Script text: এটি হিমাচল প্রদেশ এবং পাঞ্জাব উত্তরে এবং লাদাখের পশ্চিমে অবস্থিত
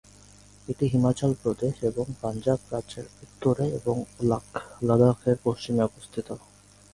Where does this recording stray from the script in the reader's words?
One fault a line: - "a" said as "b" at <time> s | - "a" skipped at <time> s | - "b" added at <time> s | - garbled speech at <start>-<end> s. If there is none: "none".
- "রাজ্যের" added at 2.7 s